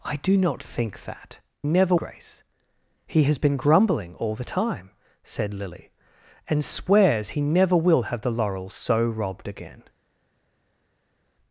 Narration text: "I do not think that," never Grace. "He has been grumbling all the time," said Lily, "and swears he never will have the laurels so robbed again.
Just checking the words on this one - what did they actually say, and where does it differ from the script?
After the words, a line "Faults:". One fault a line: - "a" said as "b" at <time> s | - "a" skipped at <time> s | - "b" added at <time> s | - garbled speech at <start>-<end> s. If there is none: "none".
"I do not think that," never Grace. "He has been grumbling all the time," said Lily, "and swears he never will have the laurels so robbed again.
Faults:
none